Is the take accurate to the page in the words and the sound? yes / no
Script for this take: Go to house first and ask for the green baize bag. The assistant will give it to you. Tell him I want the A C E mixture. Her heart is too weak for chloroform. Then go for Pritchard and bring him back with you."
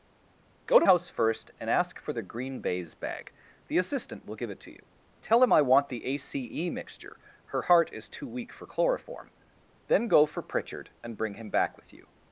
yes